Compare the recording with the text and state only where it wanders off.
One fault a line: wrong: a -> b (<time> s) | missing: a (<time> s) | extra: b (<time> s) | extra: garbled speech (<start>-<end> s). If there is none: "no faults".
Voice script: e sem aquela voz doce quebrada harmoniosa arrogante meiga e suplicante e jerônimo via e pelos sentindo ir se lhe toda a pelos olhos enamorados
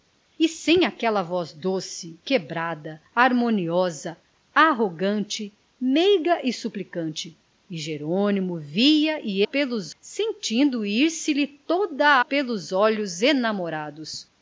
no faults